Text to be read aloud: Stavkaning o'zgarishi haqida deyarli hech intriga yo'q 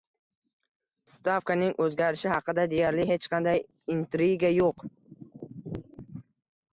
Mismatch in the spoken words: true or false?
true